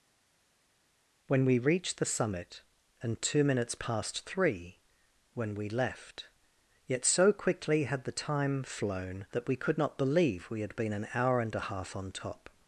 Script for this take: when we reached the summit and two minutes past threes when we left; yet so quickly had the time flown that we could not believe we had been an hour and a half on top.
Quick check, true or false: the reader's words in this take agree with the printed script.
false